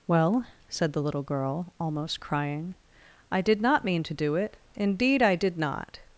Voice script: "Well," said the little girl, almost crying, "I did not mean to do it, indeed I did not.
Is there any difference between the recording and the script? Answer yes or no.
no